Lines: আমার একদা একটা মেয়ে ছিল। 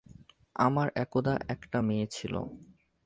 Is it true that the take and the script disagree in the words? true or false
false